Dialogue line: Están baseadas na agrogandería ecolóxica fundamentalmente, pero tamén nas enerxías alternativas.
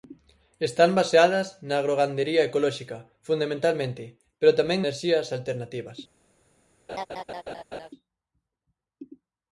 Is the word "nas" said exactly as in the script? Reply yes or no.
no